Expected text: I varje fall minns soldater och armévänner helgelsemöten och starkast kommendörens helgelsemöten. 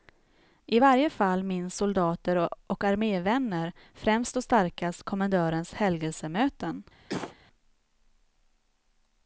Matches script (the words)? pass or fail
fail